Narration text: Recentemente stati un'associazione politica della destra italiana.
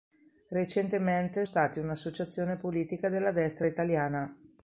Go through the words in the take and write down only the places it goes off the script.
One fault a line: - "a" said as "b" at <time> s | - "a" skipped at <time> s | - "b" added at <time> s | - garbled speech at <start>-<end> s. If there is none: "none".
none